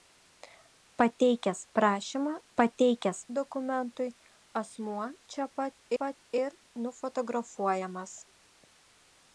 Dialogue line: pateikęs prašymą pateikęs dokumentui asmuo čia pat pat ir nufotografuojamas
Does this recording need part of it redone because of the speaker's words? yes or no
no